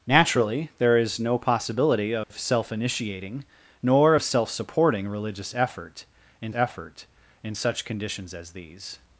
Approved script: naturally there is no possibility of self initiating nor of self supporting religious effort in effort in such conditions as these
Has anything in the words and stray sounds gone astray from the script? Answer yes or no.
yes